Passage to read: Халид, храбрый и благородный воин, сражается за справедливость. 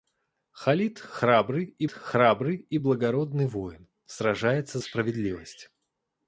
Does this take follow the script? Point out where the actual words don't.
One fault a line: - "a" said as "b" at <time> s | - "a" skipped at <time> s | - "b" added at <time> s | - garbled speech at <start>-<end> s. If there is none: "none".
- "храбрый и" added at 1.9 s
- "за" skipped at 4.8 s